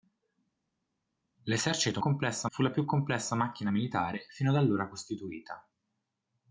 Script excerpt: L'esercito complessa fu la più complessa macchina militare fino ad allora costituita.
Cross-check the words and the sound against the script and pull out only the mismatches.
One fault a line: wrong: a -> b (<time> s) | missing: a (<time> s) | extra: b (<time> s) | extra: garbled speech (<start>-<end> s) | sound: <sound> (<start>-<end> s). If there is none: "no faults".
no faults